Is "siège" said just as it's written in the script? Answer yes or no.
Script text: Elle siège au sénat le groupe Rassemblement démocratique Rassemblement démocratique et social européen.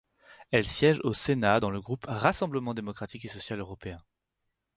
yes